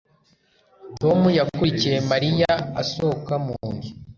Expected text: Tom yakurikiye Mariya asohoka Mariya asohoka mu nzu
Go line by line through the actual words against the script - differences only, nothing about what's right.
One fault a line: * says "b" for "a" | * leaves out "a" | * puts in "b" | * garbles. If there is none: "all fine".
* leaves out "Mariya asohoka"